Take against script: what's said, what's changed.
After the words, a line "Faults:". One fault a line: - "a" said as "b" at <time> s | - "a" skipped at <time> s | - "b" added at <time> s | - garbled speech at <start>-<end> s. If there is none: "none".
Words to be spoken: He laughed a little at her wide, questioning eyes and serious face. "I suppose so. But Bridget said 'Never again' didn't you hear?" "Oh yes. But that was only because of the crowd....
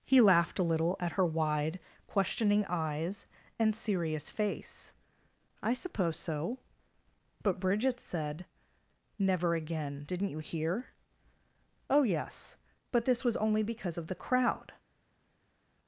He laughed a little at her wide, questioning eyes and serious face. "I suppose so. But Bridget said 'Never again' didn't you hear?" "Oh yes. But this was only because of the crowd....
Faults:
- "that" said as "this" at 13.1 s